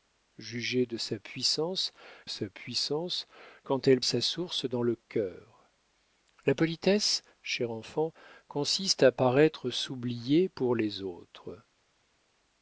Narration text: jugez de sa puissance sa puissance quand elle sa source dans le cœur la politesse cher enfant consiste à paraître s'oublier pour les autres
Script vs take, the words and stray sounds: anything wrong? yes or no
no